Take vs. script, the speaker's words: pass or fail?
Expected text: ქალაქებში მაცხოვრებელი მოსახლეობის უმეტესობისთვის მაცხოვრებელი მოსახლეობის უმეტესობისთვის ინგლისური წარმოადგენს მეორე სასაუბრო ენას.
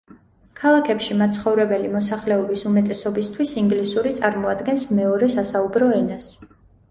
fail